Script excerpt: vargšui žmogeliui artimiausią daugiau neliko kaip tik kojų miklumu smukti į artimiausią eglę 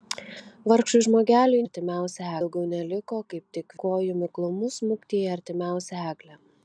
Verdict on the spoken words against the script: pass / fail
pass